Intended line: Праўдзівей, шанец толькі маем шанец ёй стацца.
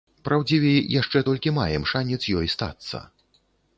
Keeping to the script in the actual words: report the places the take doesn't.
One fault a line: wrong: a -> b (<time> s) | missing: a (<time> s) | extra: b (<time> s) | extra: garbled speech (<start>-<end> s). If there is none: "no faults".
wrong: шанец -> яшчэ (1.0 s)